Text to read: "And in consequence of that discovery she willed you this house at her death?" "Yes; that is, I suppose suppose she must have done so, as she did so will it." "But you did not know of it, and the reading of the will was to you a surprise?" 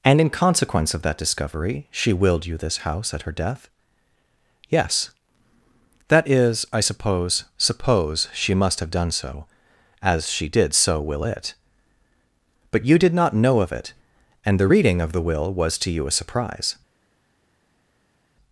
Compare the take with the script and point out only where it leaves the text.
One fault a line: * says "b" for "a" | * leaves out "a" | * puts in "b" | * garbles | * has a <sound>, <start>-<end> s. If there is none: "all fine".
all fine